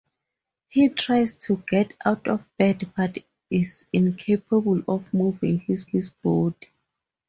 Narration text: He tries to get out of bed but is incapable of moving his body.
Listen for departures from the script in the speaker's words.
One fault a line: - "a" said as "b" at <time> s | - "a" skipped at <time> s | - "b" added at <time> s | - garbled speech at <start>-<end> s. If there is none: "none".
- "his" added at 5.8 s